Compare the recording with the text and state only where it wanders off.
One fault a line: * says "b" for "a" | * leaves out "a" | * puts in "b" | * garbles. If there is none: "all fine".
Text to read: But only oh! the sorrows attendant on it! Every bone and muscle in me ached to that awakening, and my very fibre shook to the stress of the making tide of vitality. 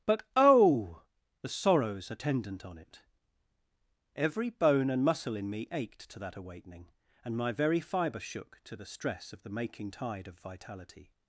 * leaves out "only"